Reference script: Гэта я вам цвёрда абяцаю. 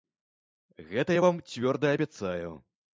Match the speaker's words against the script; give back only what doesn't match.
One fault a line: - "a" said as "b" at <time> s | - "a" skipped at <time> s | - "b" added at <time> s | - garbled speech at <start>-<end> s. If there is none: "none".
none